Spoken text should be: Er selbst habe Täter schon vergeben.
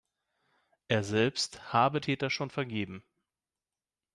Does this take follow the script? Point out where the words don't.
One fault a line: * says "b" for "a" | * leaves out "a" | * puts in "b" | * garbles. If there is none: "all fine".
all fine